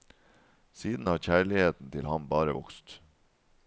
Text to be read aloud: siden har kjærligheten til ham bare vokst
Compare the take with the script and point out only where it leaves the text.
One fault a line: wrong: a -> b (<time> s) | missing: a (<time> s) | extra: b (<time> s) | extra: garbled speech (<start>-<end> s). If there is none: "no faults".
no faults